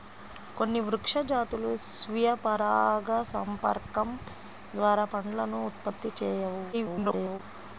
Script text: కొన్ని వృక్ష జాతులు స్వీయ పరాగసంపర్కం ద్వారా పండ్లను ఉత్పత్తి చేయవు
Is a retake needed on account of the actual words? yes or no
yes